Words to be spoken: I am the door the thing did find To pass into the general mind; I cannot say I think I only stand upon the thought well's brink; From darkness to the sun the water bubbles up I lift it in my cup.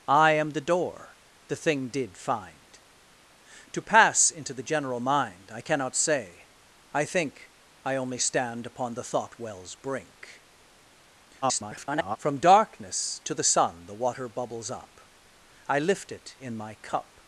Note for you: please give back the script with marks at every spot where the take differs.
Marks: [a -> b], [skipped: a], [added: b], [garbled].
I am the door the thing did find To pass into the general mind; I cannot say I think I only stand upon the thought well's brink; [garbled] From darkness to the sun the water bubbles up I lift it in my cup.